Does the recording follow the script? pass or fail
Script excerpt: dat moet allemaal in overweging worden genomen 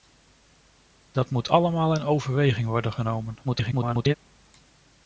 fail